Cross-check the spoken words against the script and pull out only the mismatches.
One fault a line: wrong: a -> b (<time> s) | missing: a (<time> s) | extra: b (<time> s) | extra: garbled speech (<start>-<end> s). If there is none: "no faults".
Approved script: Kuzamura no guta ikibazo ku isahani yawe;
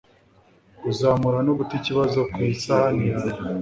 no faults